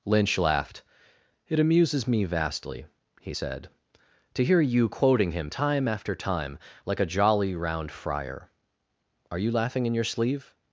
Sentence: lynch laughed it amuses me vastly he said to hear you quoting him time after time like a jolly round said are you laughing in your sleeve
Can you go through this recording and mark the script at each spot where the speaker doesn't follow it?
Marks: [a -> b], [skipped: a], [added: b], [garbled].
lynch laughed it amuses me vastly he said to hear you quoting him time after time like a jolly round [said -> friar] are you laughing in your sleeve